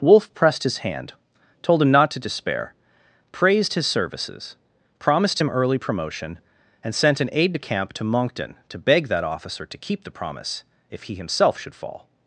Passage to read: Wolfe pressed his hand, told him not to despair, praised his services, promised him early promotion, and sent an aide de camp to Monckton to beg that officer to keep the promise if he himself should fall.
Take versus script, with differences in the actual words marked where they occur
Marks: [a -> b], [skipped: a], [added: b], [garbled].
Wolfe pressed his hand, told him not to despair, praised his services, promised him early promotion, and sent an aide de camp to Monckton to beg that officer to keep the promise if he himself should fall.